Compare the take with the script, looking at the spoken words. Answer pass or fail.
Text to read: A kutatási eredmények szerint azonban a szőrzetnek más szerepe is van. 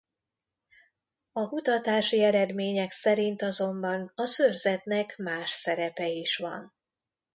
pass